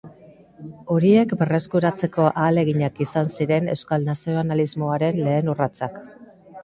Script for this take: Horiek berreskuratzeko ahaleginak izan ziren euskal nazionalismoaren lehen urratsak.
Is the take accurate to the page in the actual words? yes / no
yes